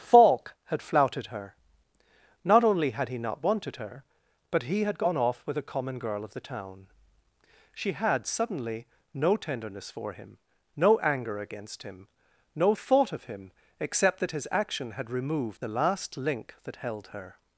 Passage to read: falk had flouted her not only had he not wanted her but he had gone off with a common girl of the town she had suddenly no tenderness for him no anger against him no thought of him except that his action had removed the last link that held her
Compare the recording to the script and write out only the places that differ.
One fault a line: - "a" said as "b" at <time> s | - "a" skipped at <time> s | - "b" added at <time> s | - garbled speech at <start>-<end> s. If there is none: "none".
none